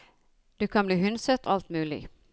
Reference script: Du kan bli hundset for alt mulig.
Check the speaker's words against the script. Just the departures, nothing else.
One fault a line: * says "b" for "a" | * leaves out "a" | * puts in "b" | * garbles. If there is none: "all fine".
* leaves out "for"